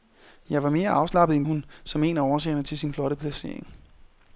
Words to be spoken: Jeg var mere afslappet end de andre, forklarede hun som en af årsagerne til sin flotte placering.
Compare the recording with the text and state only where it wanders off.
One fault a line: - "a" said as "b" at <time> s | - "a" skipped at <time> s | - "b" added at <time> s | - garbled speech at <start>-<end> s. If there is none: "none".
- "de andre forklarede" skipped at 1.4 s